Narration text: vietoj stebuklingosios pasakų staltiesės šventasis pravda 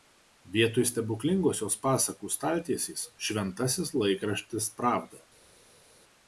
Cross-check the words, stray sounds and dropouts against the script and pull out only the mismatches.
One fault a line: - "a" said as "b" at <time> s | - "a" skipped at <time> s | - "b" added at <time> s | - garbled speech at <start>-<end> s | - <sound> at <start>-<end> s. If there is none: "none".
- "laikraštis" added at 4.0 s